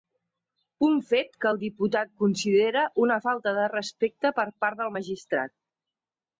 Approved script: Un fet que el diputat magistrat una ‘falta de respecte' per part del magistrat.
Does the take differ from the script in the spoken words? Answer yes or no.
yes